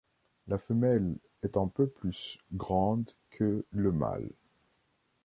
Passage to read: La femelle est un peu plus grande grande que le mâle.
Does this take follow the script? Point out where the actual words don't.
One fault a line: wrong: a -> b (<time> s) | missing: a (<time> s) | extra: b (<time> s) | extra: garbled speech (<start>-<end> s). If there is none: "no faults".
missing: grande (3.1 s)